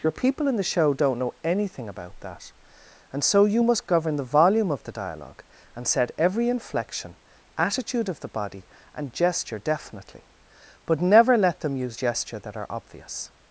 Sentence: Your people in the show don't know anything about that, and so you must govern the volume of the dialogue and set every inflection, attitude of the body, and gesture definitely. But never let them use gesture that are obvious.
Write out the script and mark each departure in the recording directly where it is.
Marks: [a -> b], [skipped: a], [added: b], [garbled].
Your people in the show don't know anything about that, and so you must govern the volume of the dialogue and set every inflection, attitude of the body, and gesture definitely. But never let them use gesture that are obvious.